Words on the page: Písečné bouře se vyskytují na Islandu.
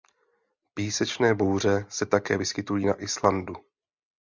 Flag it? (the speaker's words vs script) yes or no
yes